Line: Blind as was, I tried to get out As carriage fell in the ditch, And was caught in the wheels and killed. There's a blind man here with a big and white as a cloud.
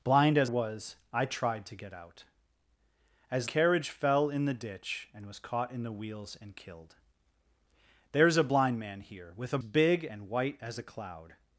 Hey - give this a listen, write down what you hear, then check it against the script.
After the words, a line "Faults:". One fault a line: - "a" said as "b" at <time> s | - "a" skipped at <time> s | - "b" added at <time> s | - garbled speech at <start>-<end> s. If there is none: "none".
Blind as was, I tried to get out As carriage fell in the ditch, And was caught in the wheels and killed. There's a blind man here with a big and white as a cloud.
Faults:
none